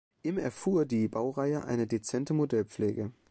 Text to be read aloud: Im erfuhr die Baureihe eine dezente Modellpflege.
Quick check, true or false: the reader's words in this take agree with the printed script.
true